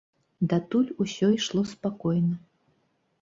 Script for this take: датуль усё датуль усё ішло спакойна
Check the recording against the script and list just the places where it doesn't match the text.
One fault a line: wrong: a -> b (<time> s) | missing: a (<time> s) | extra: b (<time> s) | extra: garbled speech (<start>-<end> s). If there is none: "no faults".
missing: датуль усё (1.3 s)